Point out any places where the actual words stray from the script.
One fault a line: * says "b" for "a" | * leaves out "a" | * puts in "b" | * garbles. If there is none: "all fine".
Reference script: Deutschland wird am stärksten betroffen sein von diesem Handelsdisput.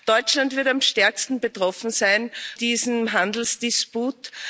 * leaves out "von"